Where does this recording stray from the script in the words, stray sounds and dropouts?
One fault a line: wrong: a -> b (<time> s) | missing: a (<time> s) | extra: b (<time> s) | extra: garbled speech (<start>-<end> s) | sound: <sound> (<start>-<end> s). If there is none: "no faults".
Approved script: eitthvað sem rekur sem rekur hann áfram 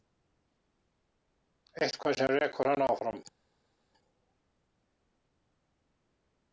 missing: sem rekur (2.7 s)